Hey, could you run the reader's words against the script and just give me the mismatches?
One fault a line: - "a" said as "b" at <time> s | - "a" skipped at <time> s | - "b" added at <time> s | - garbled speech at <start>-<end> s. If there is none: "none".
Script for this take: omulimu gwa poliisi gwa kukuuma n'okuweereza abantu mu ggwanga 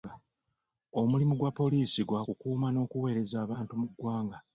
none